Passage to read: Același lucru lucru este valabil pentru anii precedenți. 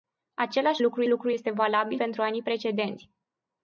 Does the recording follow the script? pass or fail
pass